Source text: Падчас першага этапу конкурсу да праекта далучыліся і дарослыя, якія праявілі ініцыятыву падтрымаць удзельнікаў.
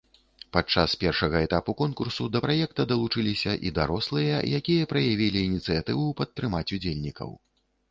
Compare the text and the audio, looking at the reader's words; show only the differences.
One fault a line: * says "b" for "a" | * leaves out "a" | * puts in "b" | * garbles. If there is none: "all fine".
all fine